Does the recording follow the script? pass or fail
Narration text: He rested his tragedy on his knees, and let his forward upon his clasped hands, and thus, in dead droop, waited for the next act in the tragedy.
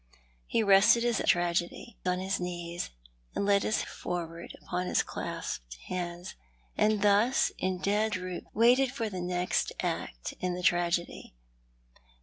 pass